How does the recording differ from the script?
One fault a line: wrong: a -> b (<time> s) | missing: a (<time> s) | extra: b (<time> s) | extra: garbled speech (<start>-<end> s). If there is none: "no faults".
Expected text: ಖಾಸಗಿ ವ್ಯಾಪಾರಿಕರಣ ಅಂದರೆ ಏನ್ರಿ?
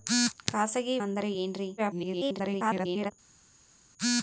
missing: ವ್ಯಾಪಾರಿಕರಣ (1.0 s)
extra: garbled speech (1.8-3.1 s)